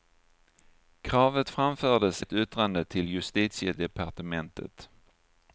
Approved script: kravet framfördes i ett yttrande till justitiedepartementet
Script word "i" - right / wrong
wrong